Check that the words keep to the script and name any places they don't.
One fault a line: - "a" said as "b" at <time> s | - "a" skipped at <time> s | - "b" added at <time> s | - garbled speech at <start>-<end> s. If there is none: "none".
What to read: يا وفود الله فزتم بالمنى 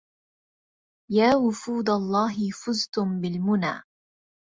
none